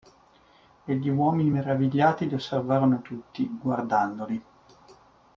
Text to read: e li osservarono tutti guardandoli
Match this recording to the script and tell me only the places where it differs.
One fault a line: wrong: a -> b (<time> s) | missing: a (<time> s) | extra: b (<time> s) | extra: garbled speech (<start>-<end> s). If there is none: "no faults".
extra: gli uomini meravigliati (0.9 s)